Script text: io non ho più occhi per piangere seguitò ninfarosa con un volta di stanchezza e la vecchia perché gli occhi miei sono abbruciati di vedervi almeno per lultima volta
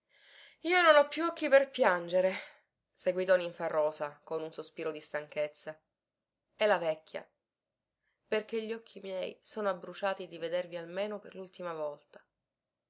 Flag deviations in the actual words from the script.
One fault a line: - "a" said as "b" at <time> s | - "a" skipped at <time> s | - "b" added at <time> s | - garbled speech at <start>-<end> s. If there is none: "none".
- "volta" said as "sospiro" at 4.5 s